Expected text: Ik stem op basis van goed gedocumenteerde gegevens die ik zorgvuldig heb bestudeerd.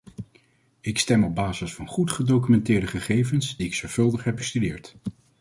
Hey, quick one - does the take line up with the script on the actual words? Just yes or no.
yes